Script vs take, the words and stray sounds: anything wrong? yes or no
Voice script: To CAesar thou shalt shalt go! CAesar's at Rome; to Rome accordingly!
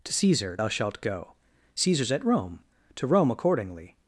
yes